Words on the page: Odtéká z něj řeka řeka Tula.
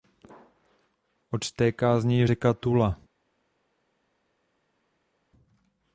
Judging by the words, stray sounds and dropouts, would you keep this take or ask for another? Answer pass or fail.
fail